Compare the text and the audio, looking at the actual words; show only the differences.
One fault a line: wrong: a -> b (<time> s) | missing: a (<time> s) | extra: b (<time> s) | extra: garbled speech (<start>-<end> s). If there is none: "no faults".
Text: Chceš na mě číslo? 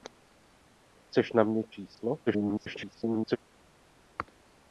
extra: garbled speech (2.3-3.4 s)